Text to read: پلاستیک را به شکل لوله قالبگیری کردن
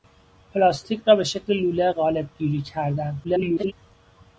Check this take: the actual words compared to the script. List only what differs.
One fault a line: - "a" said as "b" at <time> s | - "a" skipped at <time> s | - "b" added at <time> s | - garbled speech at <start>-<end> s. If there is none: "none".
- garbled speech at 3.2-3.7 s